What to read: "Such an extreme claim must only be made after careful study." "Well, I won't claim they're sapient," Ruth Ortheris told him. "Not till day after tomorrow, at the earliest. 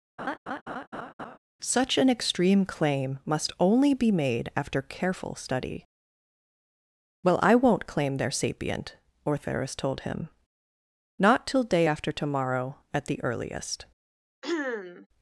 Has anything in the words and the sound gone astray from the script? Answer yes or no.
yes